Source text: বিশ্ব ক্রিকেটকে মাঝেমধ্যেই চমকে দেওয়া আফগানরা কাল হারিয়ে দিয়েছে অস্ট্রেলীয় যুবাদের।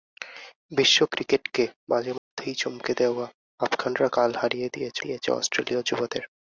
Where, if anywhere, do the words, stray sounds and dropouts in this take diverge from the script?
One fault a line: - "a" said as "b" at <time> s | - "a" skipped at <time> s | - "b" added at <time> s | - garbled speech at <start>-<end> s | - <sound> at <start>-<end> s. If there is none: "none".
- dropout at 2.2-2.3 s
- "দিয়েছে" added at 5.0 s